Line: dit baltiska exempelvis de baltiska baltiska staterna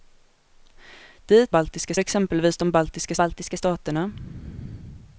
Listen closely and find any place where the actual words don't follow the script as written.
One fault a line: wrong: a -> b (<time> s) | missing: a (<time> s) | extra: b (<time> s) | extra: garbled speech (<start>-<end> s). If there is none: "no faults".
no faults